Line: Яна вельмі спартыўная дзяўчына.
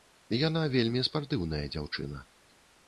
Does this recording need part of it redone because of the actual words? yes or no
no